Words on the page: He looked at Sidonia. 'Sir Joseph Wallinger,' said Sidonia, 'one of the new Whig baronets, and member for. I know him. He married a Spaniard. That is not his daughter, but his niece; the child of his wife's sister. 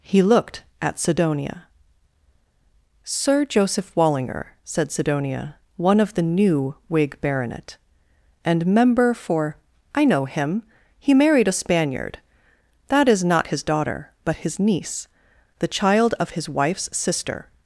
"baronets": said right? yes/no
no